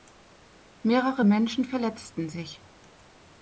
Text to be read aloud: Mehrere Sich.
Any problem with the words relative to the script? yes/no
yes